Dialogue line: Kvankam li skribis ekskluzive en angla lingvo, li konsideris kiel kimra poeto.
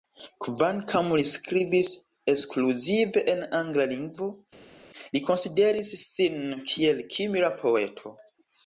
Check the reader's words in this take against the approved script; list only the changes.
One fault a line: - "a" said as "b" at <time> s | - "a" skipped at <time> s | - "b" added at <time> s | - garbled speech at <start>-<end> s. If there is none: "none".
- "sin" added at 6.0 s